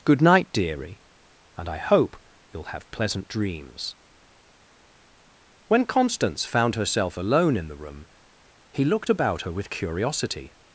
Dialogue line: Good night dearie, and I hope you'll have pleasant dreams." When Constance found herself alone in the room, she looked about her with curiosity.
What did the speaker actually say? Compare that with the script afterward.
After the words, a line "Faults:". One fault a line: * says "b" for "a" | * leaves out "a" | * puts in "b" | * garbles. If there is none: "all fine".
Good night dearie, and I hope you'll have pleasant dreams." When Constance found herself alone in the room, he looked about her with curiosity.
Faults:
* says "he" for "she"